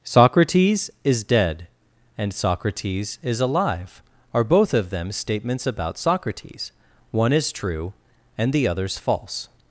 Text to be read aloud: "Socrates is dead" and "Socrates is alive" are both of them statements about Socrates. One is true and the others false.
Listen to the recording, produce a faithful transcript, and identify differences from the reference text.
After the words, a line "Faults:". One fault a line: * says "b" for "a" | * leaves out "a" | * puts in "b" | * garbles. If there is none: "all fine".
"Socrates is dead" and "Socrates is alive" are both of them statements about Socrates. One is true and the others false.
Faults:
all fine